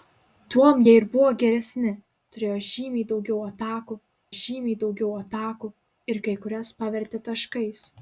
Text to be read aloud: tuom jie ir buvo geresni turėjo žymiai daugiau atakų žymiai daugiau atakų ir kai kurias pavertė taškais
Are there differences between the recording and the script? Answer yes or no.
no